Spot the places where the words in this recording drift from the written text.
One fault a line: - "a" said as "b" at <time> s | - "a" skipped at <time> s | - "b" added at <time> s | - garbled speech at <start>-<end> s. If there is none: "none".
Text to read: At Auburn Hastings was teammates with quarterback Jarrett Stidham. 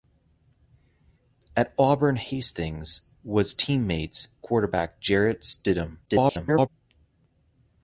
- "with" skipped at 4.3 s
- garbled speech at 6.1-6.7 s